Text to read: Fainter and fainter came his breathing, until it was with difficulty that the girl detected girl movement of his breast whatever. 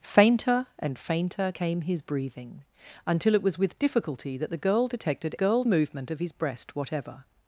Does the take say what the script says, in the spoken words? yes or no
yes